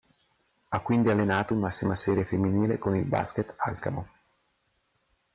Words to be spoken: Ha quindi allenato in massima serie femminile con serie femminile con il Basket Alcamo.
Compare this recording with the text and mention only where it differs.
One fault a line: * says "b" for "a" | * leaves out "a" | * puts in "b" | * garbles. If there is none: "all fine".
* leaves out "serie femminile con"